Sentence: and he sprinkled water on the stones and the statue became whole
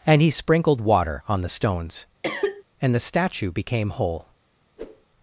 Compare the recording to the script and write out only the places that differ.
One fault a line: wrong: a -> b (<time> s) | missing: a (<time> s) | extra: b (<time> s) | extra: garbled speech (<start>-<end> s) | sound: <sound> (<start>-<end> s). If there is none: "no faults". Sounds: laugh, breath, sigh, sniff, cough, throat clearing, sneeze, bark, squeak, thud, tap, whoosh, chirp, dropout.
sound: cough (2.2-2.6 s)
sound: whoosh (4.8-5.1 s)